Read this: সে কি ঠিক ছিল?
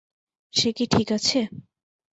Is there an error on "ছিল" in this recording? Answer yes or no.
yes